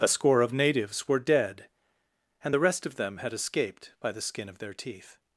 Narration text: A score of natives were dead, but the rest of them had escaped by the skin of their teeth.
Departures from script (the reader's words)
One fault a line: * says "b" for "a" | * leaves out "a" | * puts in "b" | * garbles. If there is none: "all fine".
* says "and" for "but"